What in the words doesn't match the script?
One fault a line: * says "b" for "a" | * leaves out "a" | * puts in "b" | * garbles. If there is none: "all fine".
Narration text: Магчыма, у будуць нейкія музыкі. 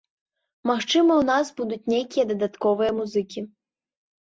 * puts in "нас"
* puts in "дадатковыя"